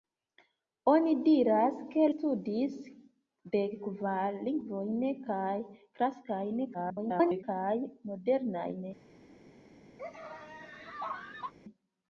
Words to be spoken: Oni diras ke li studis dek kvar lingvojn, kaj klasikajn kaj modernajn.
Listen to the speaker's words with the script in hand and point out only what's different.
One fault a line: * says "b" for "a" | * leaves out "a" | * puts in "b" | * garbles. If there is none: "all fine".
* leaves out "li"
* garbles